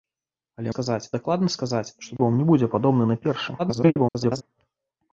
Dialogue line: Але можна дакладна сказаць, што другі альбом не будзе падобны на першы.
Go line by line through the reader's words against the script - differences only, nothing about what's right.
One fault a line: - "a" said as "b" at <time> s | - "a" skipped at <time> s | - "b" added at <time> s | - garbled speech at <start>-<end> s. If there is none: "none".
- "можна" said as "сказаць" at 0.7 s
- "другі" skipped at 2.1 s
- garbled speech at 3.6-4.4 s